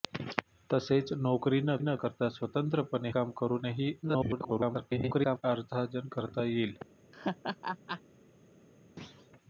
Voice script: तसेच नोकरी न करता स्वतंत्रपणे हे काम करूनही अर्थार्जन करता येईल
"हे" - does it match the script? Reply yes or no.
no